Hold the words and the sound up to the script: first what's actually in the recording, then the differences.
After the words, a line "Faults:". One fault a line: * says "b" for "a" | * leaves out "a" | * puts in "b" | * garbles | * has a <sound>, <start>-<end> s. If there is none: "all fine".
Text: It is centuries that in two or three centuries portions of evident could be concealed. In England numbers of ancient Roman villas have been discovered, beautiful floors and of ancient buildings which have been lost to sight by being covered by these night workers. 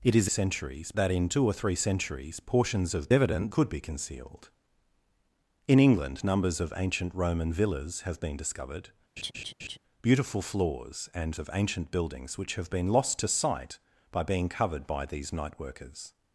It is centuries that in two or three centuries portions of evident could be concealed. In England numbers of ancient Roman villas have been discovered, beautiful floors and of ancient buildings which have been lost to sight by being covered by these night workers.
Faults:
* has a laugh, 9.2-9.8 s